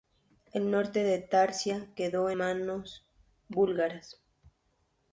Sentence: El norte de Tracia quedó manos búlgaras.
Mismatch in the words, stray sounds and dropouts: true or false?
false